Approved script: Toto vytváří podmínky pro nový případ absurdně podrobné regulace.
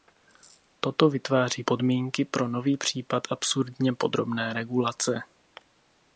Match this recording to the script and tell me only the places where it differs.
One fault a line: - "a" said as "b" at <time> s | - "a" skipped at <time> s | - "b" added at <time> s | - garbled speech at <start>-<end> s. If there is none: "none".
none